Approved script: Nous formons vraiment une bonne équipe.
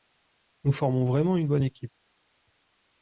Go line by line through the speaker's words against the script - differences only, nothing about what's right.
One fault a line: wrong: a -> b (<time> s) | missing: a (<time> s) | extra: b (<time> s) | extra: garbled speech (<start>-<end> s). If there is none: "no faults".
no faults